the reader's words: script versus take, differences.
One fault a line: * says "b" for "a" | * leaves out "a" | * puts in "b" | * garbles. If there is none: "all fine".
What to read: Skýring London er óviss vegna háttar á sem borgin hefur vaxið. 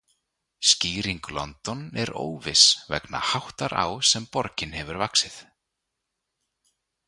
all fine